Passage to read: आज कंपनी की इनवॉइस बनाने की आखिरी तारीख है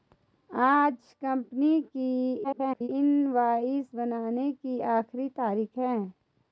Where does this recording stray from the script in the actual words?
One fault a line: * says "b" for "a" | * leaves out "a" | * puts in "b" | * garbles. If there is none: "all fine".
* garbles